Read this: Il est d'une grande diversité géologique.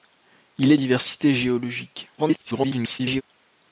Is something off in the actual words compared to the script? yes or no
yes